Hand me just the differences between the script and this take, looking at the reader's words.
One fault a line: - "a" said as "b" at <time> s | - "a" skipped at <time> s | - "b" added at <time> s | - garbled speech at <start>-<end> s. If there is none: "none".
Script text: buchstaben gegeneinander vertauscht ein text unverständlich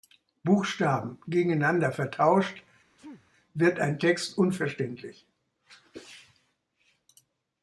- "wird" added at 3.5 s